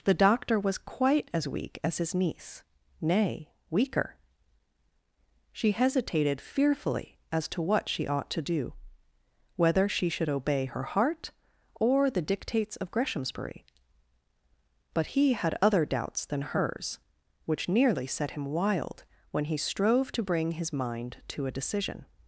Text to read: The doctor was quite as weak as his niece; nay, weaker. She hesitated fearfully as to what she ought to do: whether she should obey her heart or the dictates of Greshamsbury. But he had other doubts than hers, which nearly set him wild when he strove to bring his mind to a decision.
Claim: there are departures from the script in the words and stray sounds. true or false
false